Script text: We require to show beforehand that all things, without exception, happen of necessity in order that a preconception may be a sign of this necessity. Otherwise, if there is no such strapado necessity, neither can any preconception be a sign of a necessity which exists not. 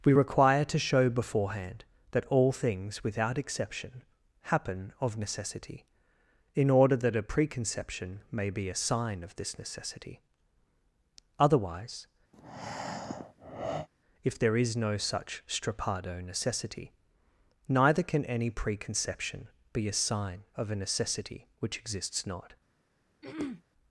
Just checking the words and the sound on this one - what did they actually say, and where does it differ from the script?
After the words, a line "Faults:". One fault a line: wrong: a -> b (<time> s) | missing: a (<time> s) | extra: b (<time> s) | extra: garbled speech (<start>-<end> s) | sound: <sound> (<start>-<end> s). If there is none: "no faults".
We require to show beforehand that all things, without exception, happen of necessity in order that a preconception may be a sign of this necessity. Otherwise, if there is no such strapado necessity, neither can any preconception be a sign of a necessity which exists not.
Faults:
sound: breath (12.3-13.9 s)
sound: throat clearing (23.2-23.6 s)